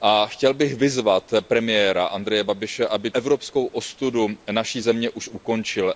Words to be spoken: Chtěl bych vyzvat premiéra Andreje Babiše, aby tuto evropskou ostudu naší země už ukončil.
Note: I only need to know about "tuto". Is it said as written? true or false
false